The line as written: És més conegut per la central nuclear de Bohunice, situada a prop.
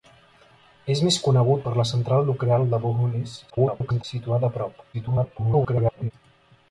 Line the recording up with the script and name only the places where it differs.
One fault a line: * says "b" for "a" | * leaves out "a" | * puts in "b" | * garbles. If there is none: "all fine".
* garbles
* garbles